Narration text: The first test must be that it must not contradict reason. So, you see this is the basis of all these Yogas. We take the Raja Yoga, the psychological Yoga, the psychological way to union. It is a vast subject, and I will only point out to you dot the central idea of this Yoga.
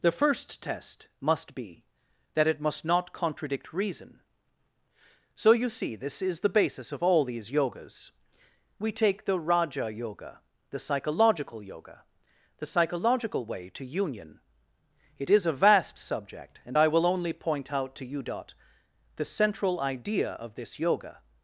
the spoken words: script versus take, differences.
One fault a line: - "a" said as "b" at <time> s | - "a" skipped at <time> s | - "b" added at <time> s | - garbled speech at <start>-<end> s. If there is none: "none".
none